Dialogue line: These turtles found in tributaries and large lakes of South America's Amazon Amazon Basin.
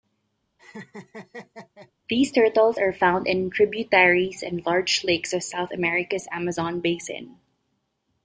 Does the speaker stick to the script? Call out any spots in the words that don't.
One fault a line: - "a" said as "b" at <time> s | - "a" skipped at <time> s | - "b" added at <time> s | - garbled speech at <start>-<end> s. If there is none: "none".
- "are" added at 2.8 s
- "Amazon" skipped at 6.8 s